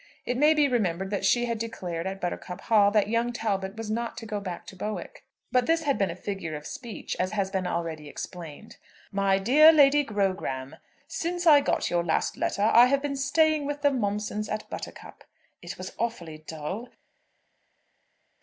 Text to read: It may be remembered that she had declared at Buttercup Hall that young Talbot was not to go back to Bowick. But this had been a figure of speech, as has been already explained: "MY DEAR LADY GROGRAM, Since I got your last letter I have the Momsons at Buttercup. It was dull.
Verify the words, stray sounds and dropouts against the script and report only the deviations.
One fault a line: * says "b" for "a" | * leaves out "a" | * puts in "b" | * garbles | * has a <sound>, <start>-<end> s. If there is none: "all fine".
* puts in "been staying with"
* puts in "awfully"